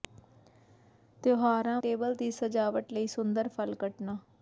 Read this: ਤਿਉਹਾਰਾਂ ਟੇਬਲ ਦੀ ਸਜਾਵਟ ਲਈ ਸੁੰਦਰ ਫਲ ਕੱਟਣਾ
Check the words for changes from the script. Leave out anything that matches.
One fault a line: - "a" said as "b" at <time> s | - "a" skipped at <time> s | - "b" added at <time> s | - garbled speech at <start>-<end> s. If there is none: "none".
none